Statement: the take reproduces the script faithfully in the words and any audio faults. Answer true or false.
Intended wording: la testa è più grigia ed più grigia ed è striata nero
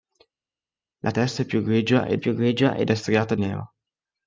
true